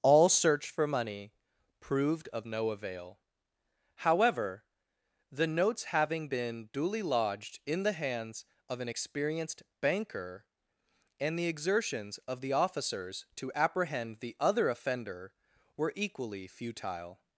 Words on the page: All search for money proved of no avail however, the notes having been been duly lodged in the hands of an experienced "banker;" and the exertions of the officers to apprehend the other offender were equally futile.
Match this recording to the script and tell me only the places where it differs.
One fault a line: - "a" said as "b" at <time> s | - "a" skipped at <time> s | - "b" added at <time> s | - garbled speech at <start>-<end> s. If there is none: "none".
- "been" skipped at 6.7 s